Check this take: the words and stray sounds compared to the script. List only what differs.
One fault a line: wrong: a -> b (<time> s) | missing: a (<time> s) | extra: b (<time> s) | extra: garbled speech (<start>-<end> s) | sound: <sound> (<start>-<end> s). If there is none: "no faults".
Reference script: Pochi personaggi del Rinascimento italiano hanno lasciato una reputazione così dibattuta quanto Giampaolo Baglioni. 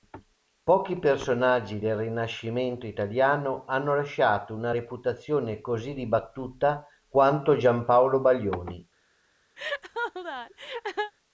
sound: laugh (9.6-11.1 s)